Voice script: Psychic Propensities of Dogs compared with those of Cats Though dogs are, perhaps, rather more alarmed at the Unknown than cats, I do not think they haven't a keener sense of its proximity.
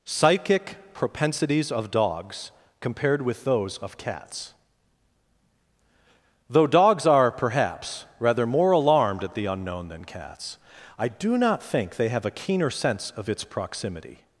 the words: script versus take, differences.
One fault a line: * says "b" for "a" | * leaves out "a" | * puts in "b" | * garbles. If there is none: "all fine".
* says "have" for "haven't"